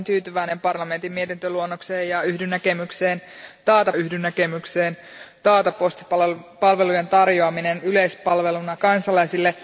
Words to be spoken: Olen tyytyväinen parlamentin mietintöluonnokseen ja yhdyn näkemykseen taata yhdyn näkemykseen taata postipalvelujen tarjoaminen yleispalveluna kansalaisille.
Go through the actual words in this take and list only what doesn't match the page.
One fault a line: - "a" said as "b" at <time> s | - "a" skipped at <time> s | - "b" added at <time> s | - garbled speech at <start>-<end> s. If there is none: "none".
none